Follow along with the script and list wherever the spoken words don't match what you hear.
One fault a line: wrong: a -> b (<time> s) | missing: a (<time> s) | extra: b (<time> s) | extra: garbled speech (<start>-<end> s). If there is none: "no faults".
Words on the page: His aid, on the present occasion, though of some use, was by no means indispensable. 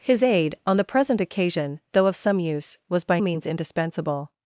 missing: no (3.2 s)